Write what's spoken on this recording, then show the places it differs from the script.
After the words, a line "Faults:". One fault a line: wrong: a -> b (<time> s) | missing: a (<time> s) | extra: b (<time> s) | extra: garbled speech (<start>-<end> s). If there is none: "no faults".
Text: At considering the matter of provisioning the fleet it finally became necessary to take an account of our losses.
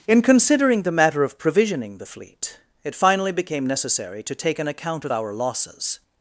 In considering the matter of provisioning the fleet it finally became necessary to take an account of our losses.
Faults:
wrong: At -> In (0.1 s)